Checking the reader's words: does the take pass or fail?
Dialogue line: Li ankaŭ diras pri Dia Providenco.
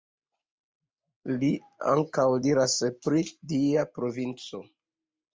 pass